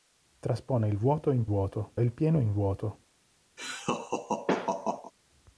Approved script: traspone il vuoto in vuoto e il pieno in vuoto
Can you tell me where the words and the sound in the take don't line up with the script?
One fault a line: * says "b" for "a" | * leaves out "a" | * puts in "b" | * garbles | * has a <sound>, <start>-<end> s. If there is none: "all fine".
* has a laugh, 3.6-5.1 s